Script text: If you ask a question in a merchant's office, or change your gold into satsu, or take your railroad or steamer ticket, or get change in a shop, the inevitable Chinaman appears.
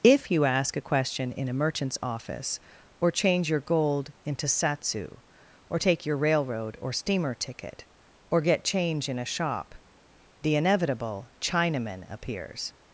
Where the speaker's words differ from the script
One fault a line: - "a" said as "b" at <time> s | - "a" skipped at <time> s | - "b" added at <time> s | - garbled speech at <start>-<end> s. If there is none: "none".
none